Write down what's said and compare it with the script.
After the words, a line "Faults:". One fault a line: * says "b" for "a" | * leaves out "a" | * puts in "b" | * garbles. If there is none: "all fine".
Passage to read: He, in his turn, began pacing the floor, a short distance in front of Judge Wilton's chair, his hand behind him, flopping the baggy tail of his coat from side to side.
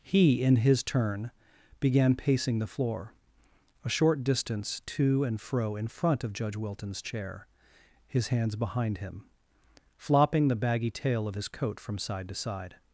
He, in his turn, began pacing the floor, a short distance to and fro in front of Judge Wilton's chair, his hands behind him, flopping the baggy tail of his coat from side to side.
Faults:
* puts in "to and fro"
* says "hands" for "hand"